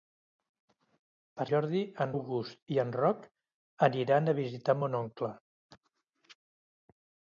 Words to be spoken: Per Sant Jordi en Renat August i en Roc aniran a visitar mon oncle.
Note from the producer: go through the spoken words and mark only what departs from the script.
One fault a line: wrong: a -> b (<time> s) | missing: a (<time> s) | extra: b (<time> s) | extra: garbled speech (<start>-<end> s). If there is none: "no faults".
missing: Sant (1.4 s)
missing: Renat (2.1 s)